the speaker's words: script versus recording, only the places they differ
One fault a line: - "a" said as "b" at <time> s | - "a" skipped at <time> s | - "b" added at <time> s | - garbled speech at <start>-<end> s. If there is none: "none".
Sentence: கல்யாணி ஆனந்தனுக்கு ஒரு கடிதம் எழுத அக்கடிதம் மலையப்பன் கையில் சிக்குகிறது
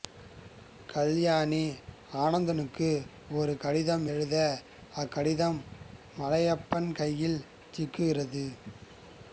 none